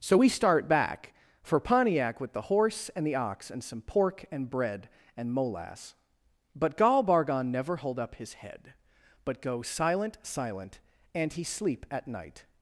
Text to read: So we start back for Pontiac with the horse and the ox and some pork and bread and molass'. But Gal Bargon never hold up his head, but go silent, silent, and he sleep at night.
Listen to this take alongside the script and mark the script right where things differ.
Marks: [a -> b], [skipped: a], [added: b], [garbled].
So we start back for Pontiac with the horse and the ox and some pork and bread and molass'. But Gal Bargon never hold up his head, but go silent, silent, and he sleep at night.